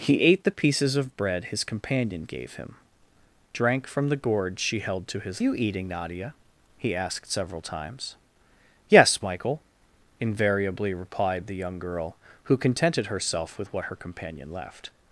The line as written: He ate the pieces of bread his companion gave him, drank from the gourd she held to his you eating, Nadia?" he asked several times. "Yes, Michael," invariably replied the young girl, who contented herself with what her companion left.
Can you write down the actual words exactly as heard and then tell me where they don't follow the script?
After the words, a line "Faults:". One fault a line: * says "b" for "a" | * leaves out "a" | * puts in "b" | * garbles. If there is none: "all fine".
He ate the pieces of bread his companion gave him, drank from the gourd she held to his you eating, Nadia?" he asked several times. "Yes, Michael," invariably replied the young girl, who contented herself with what her companion left.
Faults:
all fine